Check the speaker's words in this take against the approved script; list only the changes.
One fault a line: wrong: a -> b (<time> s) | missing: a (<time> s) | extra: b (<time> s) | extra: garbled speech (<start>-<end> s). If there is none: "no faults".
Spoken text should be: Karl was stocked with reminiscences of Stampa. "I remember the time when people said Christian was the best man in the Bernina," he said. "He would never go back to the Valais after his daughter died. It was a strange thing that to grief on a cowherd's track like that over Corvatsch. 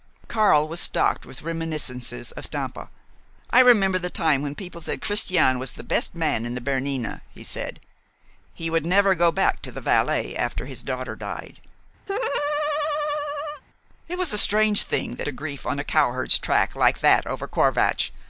no faults